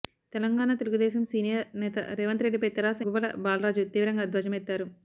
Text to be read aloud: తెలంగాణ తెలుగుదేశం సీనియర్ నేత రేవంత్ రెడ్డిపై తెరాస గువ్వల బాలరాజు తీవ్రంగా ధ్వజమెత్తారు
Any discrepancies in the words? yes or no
no